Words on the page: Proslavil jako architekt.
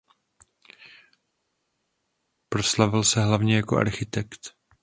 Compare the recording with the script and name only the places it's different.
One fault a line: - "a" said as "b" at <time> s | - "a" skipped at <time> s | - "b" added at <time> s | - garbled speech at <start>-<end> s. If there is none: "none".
- "se hlavně" added at 3.0 s